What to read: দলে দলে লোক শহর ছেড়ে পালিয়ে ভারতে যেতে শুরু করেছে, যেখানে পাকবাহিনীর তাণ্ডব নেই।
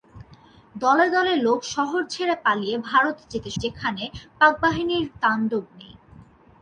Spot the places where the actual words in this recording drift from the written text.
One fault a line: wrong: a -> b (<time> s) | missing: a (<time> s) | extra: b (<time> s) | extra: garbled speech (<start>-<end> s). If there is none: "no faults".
missing: শুরু করেছে (3.5 s)